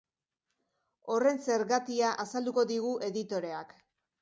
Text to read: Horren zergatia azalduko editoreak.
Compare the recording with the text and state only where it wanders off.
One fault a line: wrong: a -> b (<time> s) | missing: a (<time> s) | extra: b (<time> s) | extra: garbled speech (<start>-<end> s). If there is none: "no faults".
extra: digu (2.7 s)